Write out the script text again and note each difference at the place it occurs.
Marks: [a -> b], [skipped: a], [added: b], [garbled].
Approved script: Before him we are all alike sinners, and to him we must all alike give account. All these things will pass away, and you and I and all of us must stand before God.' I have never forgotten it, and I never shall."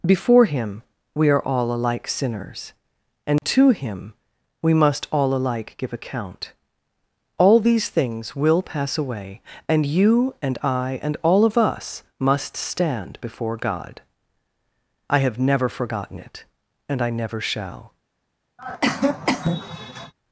Before him we are all alike sinners, and to him we must all alike give account. All these things will pass away, and you and I and all of us must stand before God.' I have never forgotten it, and I never shall."